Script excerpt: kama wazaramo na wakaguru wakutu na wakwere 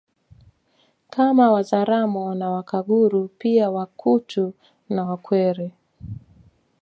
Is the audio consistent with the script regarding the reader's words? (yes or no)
no